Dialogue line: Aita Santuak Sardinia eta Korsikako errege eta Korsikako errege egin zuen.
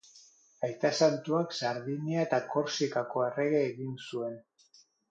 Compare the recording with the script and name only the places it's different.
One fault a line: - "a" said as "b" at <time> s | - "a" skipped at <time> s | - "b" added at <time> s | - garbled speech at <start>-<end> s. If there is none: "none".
- "eta Korsikako errege" skipped at 3.6 s